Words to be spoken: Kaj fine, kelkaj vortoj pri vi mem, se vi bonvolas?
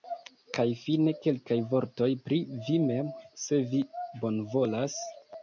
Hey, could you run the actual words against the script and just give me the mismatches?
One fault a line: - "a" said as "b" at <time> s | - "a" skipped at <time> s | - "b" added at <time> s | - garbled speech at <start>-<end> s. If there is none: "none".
none